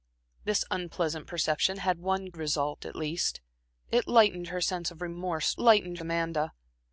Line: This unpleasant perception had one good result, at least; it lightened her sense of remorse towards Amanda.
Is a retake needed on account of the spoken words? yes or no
yes